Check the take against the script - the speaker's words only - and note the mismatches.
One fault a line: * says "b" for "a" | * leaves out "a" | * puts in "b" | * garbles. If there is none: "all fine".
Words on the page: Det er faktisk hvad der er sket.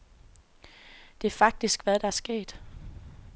all fine